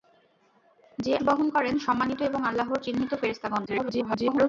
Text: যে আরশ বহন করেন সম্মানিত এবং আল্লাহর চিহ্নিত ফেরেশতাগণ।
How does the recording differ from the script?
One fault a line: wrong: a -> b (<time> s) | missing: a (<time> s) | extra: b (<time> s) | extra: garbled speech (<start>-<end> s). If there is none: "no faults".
missing: আরশ (1.1 s)
extra: garbled speech (3.7-4.5 s)